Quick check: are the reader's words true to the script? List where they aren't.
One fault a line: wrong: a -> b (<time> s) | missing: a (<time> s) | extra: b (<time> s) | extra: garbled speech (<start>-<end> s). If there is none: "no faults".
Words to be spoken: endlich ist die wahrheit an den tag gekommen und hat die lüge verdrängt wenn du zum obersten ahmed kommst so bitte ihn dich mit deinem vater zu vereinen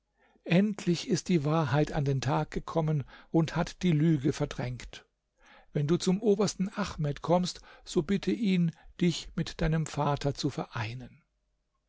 no faults